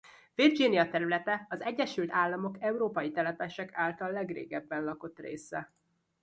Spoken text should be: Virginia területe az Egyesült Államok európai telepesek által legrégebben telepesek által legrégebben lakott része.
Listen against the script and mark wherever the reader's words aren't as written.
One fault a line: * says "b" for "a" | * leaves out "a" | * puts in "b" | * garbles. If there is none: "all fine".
* leaves out "telepesek által legrégebben"